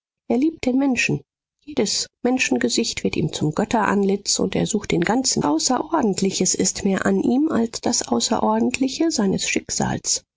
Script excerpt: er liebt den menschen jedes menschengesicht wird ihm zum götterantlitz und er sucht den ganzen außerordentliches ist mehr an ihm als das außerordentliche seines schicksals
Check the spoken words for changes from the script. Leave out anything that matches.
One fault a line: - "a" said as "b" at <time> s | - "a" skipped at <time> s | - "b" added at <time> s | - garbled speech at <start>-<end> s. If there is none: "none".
none